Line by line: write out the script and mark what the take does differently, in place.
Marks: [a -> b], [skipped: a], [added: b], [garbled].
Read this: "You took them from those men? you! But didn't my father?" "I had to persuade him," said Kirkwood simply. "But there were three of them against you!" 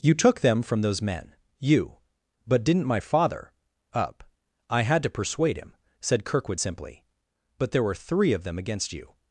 "You took them from those men? you! But didn't my father?" [added: up] "I had to persuade him," said Kirkwood simply. "But there were three of them against you!"